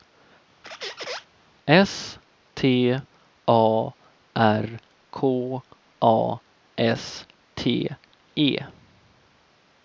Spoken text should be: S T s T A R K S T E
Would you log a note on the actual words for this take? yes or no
yes